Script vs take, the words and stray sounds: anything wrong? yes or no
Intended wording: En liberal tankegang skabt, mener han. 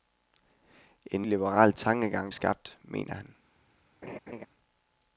yes